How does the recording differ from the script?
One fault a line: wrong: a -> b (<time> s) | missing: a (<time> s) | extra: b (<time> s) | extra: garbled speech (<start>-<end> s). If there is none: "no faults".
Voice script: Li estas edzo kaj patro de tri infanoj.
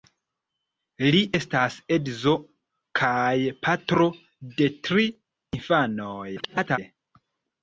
extra: garbled speech (6.4-6.8 s)